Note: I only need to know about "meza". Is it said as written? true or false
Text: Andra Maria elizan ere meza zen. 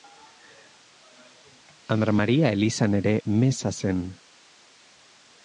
true